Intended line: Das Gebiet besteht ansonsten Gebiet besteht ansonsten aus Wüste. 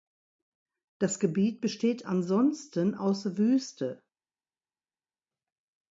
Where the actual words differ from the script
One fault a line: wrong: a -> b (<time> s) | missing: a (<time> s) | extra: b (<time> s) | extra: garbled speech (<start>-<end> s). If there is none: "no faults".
missing: Gebiet besteht ansonsten (3.0 s)